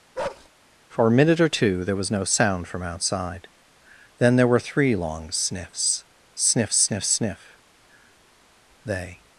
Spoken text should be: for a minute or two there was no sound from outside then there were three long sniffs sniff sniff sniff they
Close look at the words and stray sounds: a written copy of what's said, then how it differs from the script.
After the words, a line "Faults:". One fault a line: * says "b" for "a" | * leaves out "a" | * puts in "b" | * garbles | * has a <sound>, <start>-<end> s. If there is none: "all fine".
for a minute or two there was no sound from outside then there were three long sniffs sniff sniff sniff they
Faults:
* has a bark, 0.1-0.5 s